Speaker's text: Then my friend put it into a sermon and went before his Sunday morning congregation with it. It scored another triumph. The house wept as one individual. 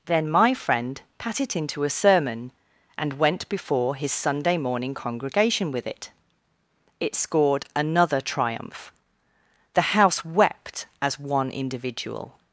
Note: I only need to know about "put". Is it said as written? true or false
false